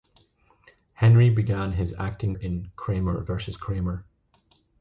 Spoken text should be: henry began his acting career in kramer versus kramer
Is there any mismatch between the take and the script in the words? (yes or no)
yes